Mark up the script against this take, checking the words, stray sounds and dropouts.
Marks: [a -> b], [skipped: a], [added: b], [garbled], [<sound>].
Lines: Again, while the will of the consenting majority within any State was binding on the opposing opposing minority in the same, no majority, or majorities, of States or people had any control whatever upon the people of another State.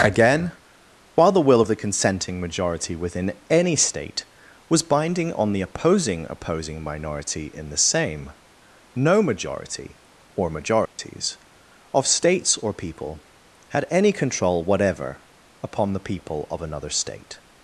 Again, while the will of the consenting majority within any State was binding on the opposing opposing minority in the same, no majority, or majorities, [dropout] of States or people had any control whatever upon the people of another State.